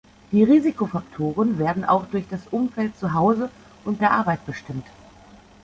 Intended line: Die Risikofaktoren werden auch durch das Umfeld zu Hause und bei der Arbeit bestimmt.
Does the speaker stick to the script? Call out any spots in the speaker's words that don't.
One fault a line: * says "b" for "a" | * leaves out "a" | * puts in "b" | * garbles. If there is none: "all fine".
* leaves out "bei"